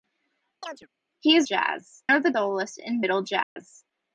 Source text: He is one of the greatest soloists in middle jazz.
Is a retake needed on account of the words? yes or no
yes